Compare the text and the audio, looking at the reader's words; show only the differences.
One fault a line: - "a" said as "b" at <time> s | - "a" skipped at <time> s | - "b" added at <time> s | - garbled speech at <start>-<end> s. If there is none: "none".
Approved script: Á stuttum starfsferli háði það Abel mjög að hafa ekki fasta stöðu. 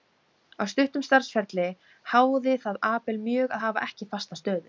none